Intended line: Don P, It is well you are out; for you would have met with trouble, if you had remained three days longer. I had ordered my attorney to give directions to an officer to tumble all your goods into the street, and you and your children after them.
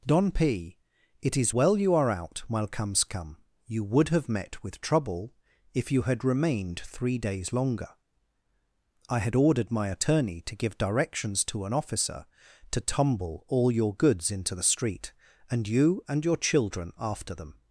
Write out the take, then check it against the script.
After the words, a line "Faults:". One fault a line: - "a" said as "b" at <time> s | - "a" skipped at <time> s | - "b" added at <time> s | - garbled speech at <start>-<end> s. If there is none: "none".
Don P, It is well you are out; while comes come you would have met with trouble, if you had remained three days longer. I had ordered my attorney to give directions to an officer to tumble all your goods into the street, and you and your children after them.
Faults:
- "for" said as "while comes come" at 2.5 s